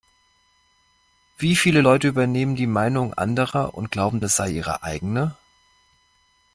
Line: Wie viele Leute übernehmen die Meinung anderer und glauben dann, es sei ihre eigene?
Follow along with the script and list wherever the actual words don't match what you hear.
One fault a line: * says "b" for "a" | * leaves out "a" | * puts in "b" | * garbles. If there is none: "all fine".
* leaves out "dann"